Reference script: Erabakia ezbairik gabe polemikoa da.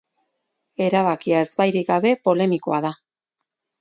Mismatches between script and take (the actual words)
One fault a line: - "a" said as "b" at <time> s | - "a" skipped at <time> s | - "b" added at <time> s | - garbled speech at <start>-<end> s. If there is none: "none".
none